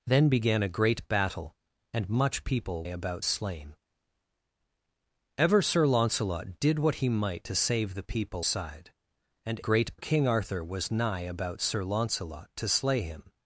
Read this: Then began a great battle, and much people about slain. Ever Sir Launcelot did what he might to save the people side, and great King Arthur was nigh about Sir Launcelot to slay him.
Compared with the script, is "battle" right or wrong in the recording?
right